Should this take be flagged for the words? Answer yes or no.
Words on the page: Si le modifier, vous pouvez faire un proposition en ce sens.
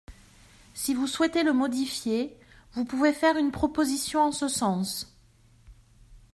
yes